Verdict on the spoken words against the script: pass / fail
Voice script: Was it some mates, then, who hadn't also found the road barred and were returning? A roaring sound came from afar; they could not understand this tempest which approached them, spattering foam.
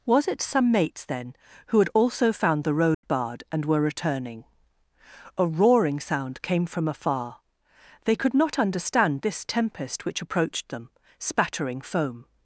fail